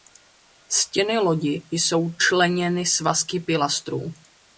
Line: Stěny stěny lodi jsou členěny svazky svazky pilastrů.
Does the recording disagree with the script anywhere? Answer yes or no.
yes